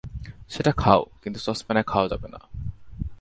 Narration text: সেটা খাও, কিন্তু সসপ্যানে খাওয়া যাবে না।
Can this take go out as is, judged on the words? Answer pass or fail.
pass